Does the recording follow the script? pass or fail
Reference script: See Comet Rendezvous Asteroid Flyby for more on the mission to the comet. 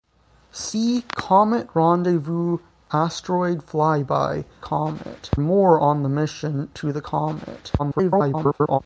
fail